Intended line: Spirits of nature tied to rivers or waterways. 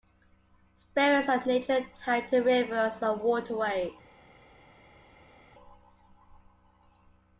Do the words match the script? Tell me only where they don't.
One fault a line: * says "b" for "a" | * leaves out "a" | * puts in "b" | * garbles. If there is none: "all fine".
* says "and" for "or"